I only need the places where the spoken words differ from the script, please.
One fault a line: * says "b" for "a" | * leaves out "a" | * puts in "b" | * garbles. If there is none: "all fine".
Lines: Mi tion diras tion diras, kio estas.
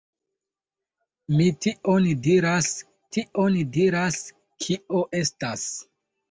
all fine